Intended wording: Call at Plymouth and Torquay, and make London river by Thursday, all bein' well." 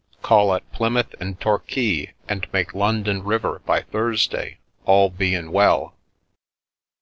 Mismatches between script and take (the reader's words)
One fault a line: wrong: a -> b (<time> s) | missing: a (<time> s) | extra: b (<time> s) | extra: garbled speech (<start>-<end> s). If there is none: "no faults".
no faults